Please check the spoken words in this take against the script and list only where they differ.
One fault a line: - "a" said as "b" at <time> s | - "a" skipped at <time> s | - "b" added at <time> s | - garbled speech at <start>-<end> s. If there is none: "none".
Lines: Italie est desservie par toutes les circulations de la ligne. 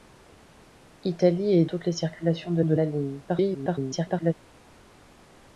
- "desservie par" skipped at 1.6 s
- "de" added at 2.6 s
- garbled speech at 3.3-4.3 s